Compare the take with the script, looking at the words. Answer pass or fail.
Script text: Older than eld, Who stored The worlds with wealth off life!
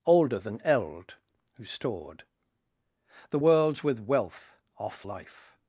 pass